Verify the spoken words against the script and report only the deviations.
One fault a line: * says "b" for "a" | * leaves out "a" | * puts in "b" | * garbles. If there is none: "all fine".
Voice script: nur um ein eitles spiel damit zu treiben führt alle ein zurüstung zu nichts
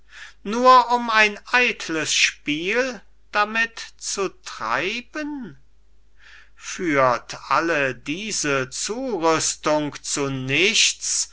* says "diese" for "ein"